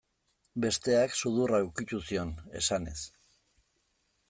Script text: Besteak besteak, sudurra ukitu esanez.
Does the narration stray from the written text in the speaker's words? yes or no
yes